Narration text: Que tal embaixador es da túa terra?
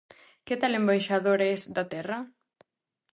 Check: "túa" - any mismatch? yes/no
yes